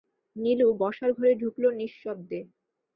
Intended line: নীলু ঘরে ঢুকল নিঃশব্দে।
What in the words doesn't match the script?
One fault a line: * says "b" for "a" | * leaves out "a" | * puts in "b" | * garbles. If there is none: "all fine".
* puts in "বসার"